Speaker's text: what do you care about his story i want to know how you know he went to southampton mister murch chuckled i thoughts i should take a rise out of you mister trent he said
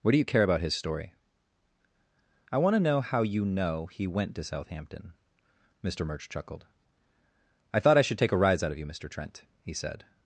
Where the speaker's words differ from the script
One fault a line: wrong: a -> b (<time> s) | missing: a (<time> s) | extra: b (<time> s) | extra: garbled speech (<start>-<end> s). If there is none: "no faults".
wrong: thoughts -> thought (7.8 s)